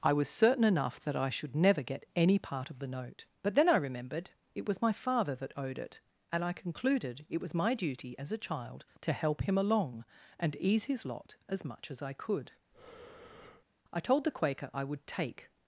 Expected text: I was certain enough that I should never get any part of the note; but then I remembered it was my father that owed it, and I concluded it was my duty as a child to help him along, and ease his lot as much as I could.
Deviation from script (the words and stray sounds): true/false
true